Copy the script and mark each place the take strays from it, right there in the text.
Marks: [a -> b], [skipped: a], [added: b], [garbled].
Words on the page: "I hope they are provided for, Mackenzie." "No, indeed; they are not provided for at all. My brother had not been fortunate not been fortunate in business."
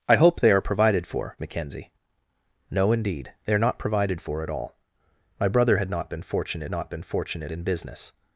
"I hope they are provided for, Mackenzie." "No, indeed; they are not provided for at all. My brother had not been fortunate not been fortunate in business."